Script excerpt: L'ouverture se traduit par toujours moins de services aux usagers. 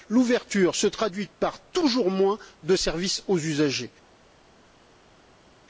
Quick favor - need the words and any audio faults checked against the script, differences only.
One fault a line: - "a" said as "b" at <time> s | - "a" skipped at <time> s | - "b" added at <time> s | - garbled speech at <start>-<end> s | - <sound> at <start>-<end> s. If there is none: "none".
none